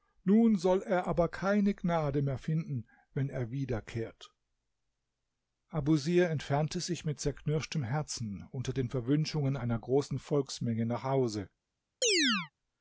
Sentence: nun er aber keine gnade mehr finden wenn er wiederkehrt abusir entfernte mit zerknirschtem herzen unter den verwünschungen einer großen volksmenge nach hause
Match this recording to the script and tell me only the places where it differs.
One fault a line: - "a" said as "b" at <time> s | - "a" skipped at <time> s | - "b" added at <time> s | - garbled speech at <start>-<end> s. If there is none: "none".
- "soll" added at 0.6 s
- "sich" added at 6.8 s